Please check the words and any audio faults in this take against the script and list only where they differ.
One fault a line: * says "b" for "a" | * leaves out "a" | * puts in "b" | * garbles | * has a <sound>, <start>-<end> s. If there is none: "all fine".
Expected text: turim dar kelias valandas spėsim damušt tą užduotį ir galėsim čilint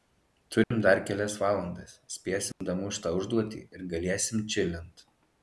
* has a dropout, 0.6-0.7 s
* has a dropout, 2.5-2.6 s